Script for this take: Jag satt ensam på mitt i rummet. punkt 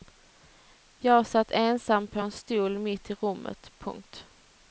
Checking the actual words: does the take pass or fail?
fail